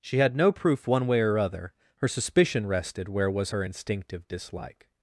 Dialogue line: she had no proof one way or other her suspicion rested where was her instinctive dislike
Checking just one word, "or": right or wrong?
right